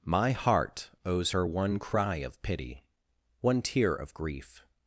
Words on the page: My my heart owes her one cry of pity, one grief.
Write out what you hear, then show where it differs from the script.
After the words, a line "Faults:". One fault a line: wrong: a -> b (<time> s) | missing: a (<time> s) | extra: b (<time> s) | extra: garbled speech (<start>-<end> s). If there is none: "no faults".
My heart owes her one cry of pity, one tear of grief.
Faults:
missing: my (0.3 s)
extra: tear of (3.6 s)